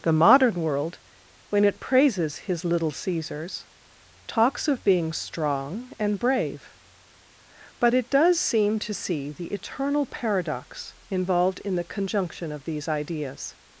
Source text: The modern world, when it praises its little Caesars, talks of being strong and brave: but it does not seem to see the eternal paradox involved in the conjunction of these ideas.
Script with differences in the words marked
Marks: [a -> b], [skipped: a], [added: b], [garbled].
The modern world, when it praises [its -> his] little Caesars, talks of being strong and brave: but it does [skipped: not] seem to see the eternal paradox involved in the conjunction of these ideas.